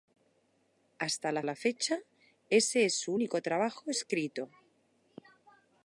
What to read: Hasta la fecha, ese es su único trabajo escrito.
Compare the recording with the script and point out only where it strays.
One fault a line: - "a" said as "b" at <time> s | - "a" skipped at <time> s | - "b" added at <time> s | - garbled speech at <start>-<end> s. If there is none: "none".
- "la" added at 1.4 s